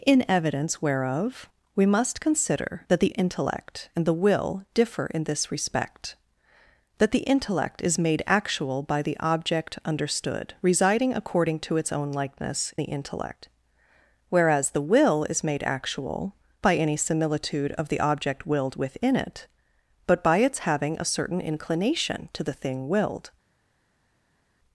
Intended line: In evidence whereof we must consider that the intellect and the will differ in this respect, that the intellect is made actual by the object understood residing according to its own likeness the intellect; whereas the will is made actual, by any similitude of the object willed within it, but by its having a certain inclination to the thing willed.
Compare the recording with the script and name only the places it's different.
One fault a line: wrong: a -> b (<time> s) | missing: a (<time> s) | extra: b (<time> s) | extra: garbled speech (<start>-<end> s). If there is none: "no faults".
no faults